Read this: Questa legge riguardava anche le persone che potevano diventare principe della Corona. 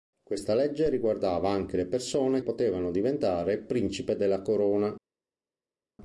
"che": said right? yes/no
no